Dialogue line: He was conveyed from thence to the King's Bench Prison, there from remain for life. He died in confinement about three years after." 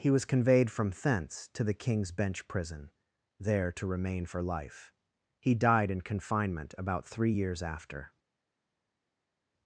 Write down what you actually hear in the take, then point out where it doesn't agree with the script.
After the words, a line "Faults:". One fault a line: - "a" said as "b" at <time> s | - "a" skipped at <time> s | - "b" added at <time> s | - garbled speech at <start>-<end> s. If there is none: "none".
He was conveyed from thence to the King's Bench Prison, there to remain for life. He died in confinement about three years after."
Faults:
- "from" said as "to" at 3.7 s